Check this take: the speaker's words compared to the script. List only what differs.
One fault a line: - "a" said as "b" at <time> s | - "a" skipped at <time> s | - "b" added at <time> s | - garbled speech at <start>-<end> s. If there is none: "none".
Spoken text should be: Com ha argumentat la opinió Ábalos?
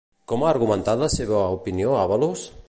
- "seva" added at 1.2 s